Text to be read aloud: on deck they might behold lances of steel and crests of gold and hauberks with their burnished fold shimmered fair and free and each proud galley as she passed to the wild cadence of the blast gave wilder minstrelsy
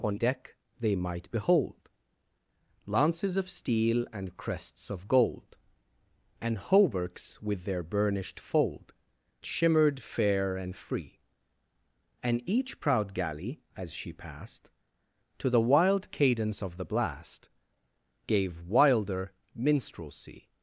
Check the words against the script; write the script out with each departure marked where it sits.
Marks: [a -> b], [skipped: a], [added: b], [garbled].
on deck they might behold lances of steel and crests of gold and hauberks with their burnished fold shimmered fair and free and each proud galley as she passed to the wild cadence of the blast gave wilder minstrelsy